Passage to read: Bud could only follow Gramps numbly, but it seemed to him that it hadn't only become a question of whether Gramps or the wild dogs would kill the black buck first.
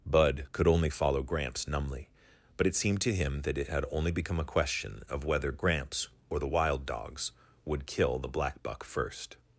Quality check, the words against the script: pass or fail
fail